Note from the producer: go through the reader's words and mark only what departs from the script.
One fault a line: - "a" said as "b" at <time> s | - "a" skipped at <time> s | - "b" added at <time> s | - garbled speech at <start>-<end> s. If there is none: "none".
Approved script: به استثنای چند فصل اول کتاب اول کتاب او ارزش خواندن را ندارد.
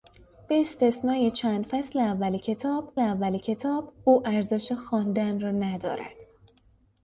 none